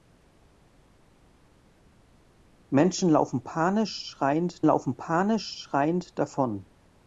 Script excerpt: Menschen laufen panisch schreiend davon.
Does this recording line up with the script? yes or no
no